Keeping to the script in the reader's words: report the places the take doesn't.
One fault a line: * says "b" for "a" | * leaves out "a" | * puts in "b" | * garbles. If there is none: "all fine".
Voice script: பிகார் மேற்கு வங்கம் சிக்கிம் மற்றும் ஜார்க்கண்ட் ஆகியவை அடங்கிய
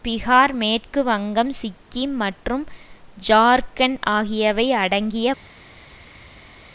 all fine